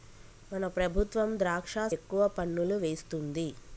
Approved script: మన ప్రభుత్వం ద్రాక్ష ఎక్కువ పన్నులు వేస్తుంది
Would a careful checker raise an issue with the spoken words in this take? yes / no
no